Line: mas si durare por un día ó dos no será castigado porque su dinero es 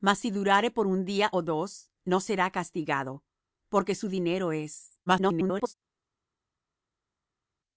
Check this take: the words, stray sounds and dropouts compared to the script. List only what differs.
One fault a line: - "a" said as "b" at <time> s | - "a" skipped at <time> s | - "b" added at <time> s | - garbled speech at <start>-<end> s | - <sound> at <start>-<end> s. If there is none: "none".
- garbled speech at 5.1-5.7 s